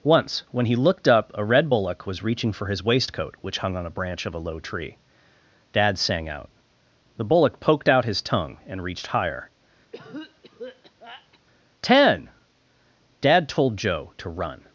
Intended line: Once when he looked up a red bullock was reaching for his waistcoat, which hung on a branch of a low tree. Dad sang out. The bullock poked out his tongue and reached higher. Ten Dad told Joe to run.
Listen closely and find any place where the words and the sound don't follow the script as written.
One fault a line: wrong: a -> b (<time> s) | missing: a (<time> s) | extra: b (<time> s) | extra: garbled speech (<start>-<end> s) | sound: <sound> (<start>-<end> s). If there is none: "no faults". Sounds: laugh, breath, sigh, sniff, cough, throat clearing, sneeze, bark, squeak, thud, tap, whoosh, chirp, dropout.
sound: cough (9.9-11.4 s)